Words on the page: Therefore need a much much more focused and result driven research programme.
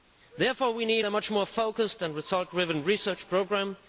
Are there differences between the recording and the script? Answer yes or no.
yes